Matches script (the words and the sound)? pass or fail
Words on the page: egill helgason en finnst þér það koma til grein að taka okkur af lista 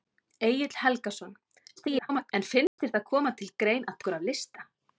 fail